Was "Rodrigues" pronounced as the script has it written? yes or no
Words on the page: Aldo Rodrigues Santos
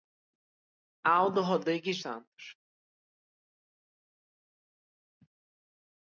yes